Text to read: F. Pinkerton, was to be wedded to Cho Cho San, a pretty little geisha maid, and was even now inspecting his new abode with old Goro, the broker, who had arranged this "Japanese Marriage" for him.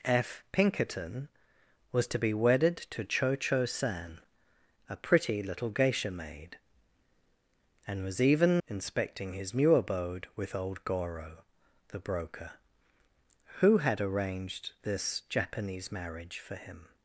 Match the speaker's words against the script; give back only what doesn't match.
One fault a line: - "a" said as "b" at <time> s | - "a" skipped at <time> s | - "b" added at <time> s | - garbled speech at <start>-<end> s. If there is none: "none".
- "now" skipped at 8.6 s